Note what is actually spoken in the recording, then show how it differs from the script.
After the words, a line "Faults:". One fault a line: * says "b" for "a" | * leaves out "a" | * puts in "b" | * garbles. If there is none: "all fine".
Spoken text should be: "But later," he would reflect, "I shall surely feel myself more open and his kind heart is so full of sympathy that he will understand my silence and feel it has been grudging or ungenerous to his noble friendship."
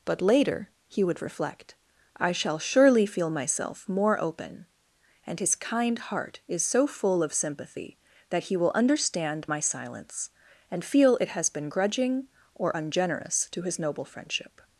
"But later," he would reflect, "I shall surely feel myself more open and his kind heart is so full of sympathy that he will understand my silence and feel it has been grudging or ungenerous to his noble friendship."
Faults:
all fine